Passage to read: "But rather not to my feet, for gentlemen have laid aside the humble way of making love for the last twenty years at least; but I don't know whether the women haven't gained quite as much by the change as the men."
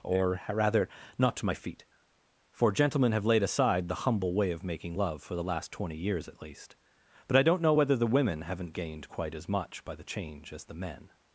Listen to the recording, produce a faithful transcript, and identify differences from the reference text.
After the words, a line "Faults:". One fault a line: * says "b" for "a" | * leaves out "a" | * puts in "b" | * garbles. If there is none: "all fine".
"Or rather not to my feet, for gentlemen have laid aside the humble way of making love for the last twenty years at least; but I don't know whether the women haven't gained quite as much by the change as the men."
Faults:
* says "Or" for "But"